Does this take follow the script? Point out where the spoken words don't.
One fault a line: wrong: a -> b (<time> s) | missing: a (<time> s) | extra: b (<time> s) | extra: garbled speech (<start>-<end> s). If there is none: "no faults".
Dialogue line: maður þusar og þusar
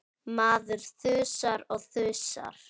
no faults